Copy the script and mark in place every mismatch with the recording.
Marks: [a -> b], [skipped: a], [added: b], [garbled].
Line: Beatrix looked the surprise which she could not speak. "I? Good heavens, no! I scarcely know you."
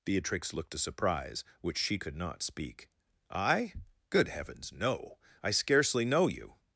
Beatrix looked [the -> a] surprise which she could not speak. "I? Good heavens, no! I scarcely know you."